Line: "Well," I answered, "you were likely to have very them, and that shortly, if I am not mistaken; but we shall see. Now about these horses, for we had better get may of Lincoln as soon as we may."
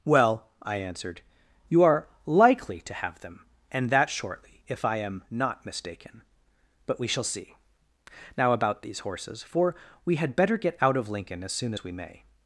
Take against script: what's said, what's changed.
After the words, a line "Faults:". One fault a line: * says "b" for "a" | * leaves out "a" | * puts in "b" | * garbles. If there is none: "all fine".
"Well," I answered, "you are likely to have them, and that shortly, if I am not mistaken; but we shall see. Now about these horses, for we had better get out of Lincoln as soon as we may."
Faults:
* says "are" for "were"
* leaves out "very"
* says "out" for "may"